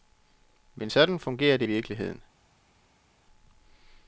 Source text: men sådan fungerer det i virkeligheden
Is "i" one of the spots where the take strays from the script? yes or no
no